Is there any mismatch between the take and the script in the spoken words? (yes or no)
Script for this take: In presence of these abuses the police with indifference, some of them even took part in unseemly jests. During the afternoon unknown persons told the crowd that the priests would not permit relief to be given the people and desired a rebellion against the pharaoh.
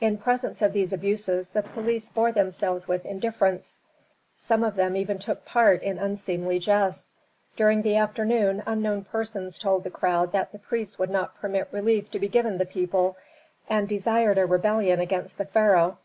yes